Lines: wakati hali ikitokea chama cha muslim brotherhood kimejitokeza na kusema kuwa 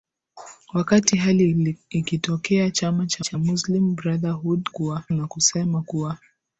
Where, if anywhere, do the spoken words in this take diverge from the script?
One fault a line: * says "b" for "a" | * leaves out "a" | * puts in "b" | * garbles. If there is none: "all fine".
* puts in "cha"
* says "kuwa" for "kimejitokeza"